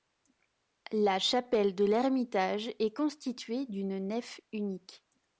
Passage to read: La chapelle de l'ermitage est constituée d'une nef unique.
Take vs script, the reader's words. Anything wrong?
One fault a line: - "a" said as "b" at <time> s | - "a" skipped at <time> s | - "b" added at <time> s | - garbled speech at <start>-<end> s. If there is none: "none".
none